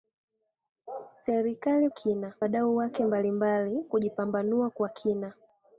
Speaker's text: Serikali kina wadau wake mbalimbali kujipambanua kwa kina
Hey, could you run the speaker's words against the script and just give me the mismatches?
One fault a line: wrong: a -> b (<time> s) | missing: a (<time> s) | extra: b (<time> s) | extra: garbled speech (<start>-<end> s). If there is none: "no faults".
no faults